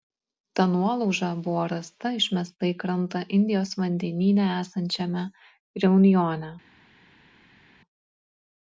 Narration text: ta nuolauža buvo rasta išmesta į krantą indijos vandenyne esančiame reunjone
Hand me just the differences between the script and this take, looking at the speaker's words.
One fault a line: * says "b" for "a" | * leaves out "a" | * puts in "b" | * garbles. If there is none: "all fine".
all fine